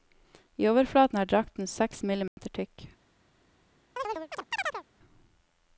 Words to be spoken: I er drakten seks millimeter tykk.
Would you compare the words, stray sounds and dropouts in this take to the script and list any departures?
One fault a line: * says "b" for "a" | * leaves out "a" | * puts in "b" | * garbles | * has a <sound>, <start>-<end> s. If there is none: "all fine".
* puts in "overflaten"
* has a dropout, 2.3-2.4 s
* has a chirp, 4.0-4.8 s